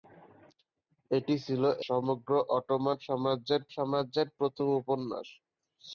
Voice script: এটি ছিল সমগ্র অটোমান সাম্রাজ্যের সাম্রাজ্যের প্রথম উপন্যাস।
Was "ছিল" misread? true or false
false